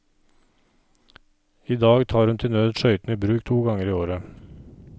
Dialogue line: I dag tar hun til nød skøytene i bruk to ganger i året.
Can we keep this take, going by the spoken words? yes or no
yes